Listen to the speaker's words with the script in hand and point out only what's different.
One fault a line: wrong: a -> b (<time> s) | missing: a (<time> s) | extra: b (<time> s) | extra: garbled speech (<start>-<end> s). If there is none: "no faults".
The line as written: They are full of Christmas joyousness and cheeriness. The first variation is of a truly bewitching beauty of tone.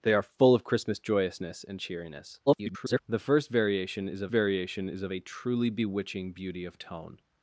extra: garbled speech (2.5-3.0 s)
extra: variation is of (4.3 s)